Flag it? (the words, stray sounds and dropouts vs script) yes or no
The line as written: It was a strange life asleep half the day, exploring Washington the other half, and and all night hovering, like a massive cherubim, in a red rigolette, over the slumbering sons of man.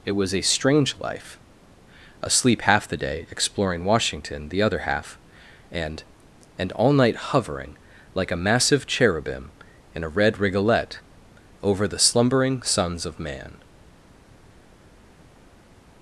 no